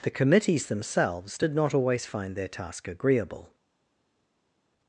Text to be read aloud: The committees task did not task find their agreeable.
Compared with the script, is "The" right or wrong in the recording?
right